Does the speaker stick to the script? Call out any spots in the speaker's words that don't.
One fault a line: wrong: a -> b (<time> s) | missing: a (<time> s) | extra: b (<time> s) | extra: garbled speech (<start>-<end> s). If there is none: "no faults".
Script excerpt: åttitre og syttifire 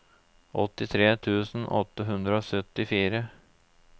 extra: tusen åtte hundre (1.3 s)